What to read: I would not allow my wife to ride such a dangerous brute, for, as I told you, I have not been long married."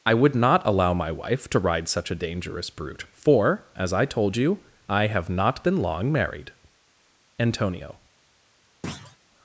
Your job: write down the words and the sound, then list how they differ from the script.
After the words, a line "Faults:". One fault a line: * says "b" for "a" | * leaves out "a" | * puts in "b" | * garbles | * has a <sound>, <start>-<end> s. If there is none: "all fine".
I would not allow my wife to ride such a dangerous brute, for, as I told you, I have not been long married." Antonio
Faults:
* puts in "Antonio"
* has a thud, 8.8-9.2 s